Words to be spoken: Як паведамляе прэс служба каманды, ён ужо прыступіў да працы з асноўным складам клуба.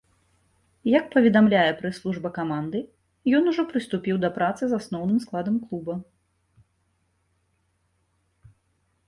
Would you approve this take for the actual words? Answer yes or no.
yes